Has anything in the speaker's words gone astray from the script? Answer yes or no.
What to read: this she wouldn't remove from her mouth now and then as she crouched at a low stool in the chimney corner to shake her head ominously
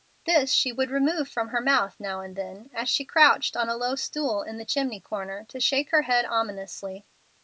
yes